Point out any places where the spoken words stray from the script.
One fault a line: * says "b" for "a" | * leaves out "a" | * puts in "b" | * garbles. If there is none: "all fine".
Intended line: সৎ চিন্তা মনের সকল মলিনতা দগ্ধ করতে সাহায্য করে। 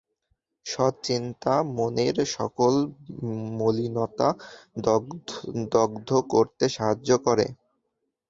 all fine